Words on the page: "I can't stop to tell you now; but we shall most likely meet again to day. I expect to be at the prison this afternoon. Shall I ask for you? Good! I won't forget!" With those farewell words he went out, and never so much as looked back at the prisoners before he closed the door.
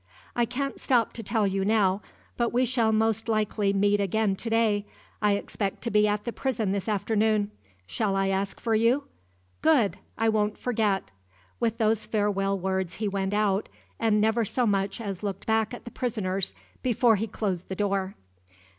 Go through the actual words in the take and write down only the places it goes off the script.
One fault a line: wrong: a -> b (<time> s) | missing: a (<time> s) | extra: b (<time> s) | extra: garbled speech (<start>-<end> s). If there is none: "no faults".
no faults